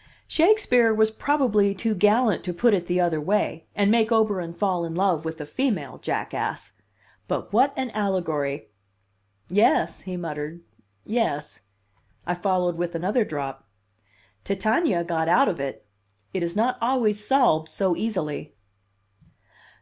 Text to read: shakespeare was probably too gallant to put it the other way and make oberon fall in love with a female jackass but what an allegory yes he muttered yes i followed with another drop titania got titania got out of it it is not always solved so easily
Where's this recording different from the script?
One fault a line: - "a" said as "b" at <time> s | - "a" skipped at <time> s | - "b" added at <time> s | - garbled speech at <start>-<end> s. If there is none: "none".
- "titania got" skipped at 15.3 s